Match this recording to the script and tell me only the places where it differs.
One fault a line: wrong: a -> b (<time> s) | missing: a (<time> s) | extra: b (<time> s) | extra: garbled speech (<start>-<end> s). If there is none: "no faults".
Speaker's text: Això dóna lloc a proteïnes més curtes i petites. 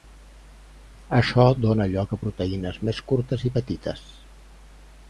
no faults